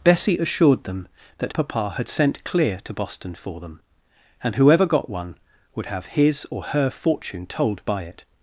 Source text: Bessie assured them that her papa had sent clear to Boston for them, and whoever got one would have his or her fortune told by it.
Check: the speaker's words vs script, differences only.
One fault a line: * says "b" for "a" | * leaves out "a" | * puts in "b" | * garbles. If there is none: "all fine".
* leaves out "her"